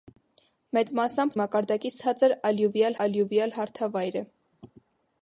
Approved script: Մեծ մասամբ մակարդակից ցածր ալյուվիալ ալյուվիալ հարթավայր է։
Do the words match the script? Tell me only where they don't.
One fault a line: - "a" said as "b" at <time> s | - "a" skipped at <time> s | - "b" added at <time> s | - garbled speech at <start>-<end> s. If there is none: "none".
none